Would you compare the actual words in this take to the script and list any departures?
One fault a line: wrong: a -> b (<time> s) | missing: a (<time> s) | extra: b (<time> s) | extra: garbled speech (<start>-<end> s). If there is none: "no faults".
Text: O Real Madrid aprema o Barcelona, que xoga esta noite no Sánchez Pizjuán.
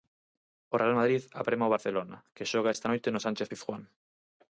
no faults